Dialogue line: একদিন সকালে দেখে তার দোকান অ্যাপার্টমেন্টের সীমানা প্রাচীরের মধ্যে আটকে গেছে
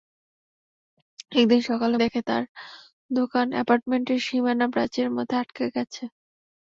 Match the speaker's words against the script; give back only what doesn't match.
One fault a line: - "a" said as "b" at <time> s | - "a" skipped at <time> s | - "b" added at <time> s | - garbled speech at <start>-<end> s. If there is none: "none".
none